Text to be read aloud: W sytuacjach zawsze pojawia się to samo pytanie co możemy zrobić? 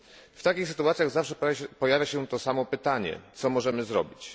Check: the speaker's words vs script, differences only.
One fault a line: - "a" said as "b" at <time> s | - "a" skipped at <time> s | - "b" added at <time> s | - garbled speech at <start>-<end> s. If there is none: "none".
- "takich" added at 0.4 s